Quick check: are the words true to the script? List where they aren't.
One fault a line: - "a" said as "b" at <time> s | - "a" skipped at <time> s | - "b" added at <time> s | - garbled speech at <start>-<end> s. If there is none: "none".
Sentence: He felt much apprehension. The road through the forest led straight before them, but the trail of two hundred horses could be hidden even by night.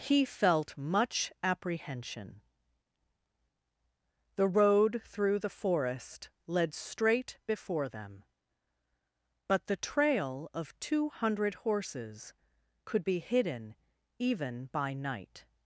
none